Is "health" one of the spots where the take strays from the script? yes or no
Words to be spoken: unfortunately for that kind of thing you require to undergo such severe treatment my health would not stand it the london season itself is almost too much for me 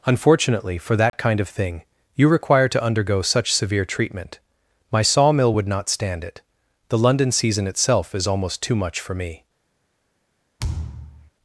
yes